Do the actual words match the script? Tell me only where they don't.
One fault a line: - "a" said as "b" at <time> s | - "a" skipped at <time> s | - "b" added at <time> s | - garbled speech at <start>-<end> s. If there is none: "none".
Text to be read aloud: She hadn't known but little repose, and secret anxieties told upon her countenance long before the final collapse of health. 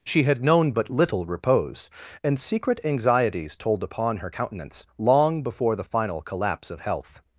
- "hadn't" said as "had" at 0.2 s